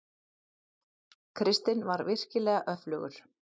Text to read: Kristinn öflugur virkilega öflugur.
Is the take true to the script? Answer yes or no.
no